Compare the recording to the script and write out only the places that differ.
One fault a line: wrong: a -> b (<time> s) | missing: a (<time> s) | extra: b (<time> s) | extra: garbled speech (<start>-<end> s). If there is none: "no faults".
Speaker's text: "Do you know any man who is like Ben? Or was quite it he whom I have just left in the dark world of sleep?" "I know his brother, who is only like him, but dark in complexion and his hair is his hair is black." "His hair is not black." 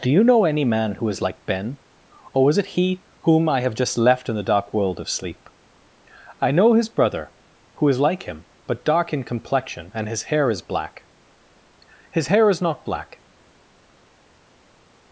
missing: quite (2.6 s)
missing: only (8.0 s)
missing: his hair is (10.6 s)